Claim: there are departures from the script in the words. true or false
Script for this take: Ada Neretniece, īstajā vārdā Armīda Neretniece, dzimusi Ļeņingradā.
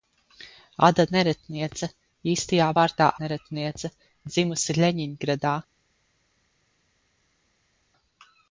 true